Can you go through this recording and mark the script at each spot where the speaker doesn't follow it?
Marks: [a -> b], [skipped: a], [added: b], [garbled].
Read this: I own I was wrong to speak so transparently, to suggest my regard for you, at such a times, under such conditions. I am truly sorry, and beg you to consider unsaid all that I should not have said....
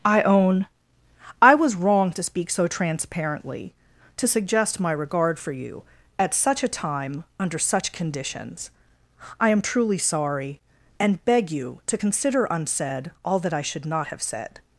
I own I was wrong to speak so transparently, to suggest my regard for you, at such a [times, -> time] under such conditions. I am truly sorry, and beg you to consider unsaid all that I should not have said....